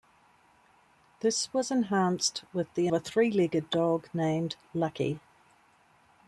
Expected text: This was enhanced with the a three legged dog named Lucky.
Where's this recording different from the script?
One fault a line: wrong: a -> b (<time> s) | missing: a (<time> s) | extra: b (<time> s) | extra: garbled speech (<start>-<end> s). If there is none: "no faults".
no faults